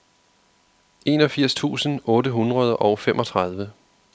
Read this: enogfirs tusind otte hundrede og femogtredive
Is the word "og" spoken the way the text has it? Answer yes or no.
yes